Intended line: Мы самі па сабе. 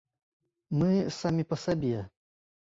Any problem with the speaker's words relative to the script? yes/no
no